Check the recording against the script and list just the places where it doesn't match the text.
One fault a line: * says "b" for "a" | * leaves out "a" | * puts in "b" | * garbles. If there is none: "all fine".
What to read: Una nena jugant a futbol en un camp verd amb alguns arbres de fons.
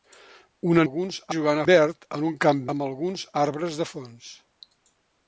* says "alguns" for "nena"
* says "verd" for "futbol"
* leaves out "verd"